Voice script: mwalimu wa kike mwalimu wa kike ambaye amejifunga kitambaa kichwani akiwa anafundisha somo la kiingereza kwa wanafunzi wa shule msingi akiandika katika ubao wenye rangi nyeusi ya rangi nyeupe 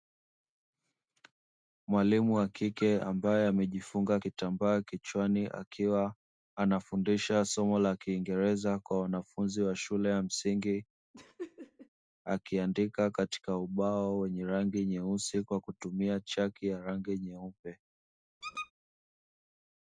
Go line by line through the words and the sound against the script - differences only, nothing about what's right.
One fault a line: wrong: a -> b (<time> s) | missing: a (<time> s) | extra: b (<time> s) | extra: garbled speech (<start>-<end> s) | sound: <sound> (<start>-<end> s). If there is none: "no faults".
missing: mwalimu wa kike (3.0 s)
extra: ya (10.1 s)
sound: laugh (11.1-11.9 s)
extra: kwa kutumia chaki (15.4 s)
sound: squeak (18.4-18.7 s)